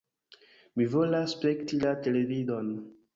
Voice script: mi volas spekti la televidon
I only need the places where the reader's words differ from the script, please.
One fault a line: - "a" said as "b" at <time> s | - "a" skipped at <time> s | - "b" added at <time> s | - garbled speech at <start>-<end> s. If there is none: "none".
none